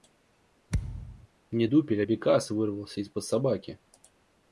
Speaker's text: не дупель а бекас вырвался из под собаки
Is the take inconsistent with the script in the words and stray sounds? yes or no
yes